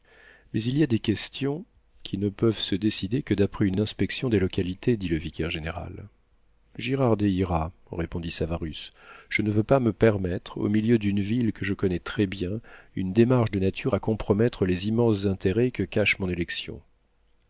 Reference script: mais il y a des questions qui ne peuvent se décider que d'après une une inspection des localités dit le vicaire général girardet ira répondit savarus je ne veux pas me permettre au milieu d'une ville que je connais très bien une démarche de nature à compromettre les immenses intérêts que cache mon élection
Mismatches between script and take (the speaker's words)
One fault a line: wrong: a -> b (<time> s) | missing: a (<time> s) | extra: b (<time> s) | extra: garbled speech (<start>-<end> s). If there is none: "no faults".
no faults